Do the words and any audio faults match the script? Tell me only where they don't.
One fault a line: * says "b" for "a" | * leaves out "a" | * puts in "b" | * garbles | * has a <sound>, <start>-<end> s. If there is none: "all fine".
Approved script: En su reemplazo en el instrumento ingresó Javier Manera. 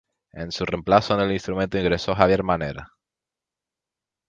all fine